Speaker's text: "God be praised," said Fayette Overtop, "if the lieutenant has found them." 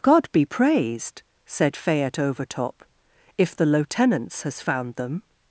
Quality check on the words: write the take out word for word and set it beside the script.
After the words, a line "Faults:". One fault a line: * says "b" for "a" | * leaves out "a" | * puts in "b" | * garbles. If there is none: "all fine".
"God be praised," said Fayette Overtop, "if the lieutenants has found them."
Faults:
* says "lieutenants" for "lieutenant"